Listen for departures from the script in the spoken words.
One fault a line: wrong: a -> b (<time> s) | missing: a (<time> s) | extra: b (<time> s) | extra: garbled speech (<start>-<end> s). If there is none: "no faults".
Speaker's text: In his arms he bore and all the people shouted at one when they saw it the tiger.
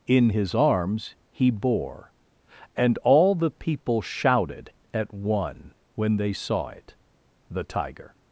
no faults